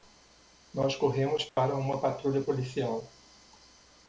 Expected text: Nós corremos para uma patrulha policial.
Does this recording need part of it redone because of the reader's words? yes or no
no